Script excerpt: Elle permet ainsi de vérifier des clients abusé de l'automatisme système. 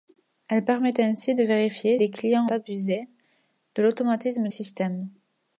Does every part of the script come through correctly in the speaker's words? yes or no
yes